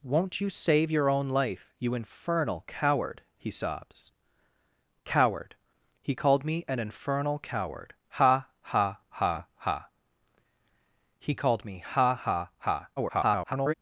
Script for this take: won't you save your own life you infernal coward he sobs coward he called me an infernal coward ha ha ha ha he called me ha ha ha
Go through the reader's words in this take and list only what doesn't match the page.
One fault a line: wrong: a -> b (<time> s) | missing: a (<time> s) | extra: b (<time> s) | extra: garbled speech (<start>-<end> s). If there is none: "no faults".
extra: garbled speech (13.0-13.7 s)